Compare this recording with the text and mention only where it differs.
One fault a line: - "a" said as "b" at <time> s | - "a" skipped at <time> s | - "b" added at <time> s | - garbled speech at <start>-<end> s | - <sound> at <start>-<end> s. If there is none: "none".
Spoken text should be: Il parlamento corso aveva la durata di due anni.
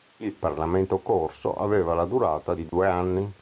- dropout at 2.7-2.7 s